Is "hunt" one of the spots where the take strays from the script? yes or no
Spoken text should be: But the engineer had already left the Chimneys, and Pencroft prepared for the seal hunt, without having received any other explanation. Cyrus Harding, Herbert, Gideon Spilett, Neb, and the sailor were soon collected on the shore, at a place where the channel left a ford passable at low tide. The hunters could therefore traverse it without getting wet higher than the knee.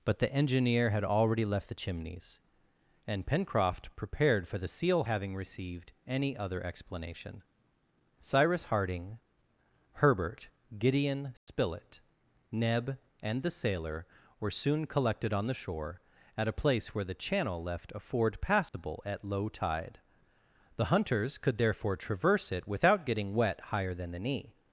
yes